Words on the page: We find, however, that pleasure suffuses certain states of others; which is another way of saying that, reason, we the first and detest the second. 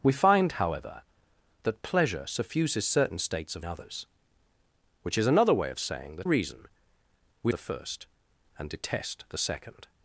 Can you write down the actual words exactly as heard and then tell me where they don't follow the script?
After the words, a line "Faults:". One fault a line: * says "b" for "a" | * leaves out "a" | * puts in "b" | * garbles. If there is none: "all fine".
We find, however, that pleasure suffuses certain states of others; which is another way of saying that, reason, we the first and detest the second.
Faults:
all fine